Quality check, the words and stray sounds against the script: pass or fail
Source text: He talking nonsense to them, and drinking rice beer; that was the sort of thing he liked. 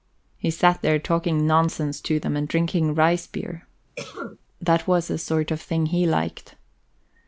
fail